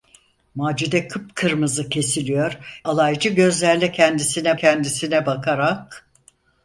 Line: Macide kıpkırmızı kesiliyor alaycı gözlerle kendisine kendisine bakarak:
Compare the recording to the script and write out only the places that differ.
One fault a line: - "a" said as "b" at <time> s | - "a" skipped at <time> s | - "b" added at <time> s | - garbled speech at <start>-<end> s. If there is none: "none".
none